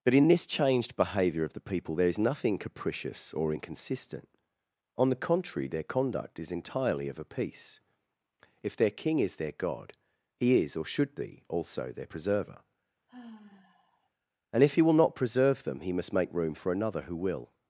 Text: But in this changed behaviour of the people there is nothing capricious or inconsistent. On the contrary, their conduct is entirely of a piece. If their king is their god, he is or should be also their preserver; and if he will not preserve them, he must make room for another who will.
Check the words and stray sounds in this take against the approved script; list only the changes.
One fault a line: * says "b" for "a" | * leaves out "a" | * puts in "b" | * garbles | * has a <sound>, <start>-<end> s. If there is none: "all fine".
* has a sigh, 13.1-14.1 s